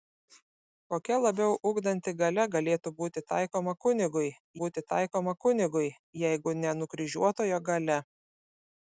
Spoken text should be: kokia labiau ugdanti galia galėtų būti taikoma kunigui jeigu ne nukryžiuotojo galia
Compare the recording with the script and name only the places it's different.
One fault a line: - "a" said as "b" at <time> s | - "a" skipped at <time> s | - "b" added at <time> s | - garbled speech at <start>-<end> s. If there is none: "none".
- "būti taikoma kunigui" added at 4.6 s